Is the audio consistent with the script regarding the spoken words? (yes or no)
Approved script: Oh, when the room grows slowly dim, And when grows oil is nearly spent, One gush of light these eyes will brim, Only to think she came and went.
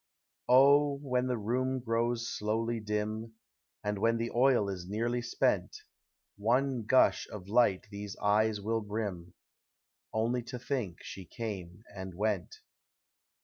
no